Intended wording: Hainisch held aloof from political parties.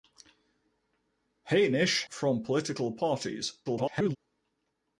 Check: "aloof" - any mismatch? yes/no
yes